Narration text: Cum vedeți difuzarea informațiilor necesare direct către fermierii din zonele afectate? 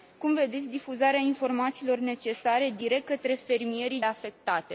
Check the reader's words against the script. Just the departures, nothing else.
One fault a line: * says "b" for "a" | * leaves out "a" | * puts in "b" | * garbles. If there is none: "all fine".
* leaves out "din zonele"